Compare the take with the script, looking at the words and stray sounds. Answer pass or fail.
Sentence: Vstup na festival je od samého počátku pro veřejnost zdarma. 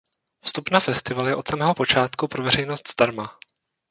pass